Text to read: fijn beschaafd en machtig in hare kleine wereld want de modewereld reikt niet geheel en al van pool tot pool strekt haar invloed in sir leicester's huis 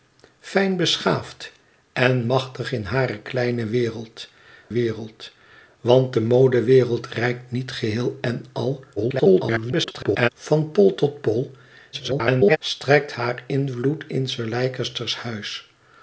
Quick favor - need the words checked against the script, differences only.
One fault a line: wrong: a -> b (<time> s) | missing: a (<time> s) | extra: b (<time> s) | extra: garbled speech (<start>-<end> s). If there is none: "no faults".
extra: wereld (4.7 s)
extra: garbled speech (9.0-10.3 s)
extra: garbled speech (11.9-12.6 s)